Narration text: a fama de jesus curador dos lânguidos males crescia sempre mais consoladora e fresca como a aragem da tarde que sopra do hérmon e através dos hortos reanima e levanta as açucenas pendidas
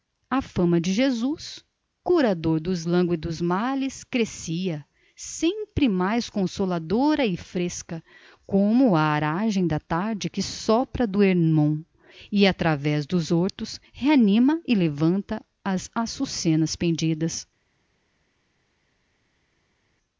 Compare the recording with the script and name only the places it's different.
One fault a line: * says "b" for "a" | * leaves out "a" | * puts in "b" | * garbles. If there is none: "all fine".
all fine